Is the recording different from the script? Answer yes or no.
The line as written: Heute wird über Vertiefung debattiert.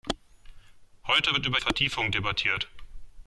no